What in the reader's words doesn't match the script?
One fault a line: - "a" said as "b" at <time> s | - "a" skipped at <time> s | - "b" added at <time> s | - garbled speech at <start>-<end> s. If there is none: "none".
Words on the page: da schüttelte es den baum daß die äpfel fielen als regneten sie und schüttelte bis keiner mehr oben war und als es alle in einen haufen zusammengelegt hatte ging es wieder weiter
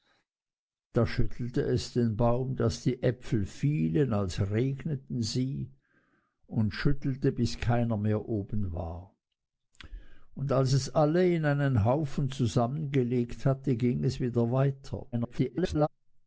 - garbled speech at 15.1-15.9 s